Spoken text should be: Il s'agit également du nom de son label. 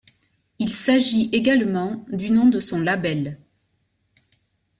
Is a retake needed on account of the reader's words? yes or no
no